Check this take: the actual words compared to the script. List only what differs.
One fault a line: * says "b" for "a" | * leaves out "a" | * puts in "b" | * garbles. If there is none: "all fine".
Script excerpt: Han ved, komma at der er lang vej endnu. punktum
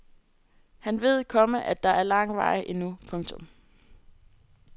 all fine